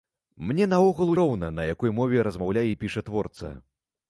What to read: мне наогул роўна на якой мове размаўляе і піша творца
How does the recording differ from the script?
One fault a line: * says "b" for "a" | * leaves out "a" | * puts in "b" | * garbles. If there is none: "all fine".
all fine